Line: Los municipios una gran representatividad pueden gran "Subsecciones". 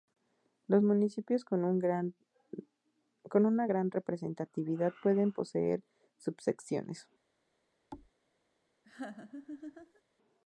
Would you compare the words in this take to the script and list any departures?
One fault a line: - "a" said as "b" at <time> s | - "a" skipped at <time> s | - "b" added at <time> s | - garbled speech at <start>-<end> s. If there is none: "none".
- "con" added at 1.4 s
- "gran" said as "poseer" at 5.3 s